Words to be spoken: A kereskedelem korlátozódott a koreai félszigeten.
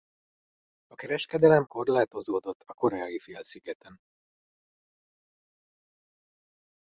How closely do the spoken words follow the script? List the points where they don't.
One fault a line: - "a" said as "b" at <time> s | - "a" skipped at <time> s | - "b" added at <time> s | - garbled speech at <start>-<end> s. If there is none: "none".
none